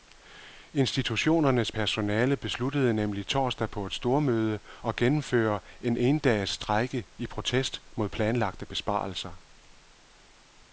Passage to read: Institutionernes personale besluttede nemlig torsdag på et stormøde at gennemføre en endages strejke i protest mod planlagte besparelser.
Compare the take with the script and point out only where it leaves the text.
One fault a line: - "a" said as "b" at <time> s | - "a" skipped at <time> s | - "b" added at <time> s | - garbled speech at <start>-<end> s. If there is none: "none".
none